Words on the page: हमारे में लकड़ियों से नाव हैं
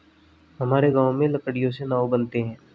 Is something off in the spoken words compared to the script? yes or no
yes